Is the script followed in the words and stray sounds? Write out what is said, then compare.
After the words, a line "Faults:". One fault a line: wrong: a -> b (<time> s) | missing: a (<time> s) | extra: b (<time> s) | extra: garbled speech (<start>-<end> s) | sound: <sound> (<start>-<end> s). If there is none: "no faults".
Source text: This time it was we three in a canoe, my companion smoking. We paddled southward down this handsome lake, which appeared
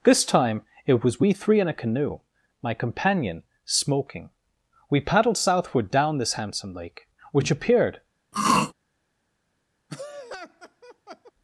This time it was we three in a canoe, my companion smoking. We paddled southward down this handsome lake, which appeared
Faults:
sound: throat clearing (8.3-8.7 s)
sound: laugh (9.9-11.3 s)